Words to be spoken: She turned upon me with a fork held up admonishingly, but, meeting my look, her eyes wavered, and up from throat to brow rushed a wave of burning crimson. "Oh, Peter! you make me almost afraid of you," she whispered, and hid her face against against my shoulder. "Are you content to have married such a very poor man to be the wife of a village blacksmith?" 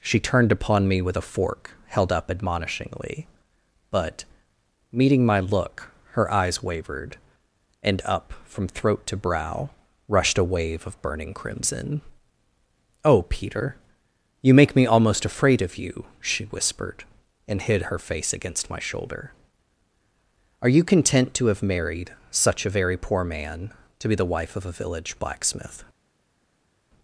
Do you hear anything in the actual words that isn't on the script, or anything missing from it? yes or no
yes